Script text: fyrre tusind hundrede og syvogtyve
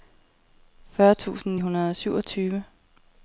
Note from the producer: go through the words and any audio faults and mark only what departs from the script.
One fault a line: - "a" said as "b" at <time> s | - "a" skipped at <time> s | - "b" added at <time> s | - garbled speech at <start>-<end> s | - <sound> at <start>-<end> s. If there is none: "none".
none